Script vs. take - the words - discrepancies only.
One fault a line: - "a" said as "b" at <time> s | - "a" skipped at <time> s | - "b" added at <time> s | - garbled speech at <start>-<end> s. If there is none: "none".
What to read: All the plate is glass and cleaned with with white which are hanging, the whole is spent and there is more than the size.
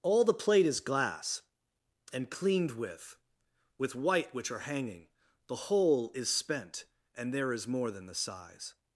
none